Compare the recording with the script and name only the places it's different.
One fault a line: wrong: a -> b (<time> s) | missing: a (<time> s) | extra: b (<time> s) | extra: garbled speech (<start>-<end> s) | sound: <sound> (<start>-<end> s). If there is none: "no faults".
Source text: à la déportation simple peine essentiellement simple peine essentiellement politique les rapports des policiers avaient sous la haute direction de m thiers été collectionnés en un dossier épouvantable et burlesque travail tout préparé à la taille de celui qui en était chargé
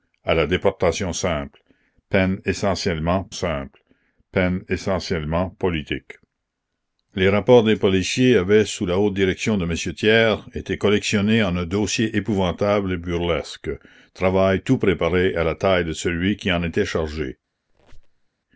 sound: squeak (17.7-18.3 s)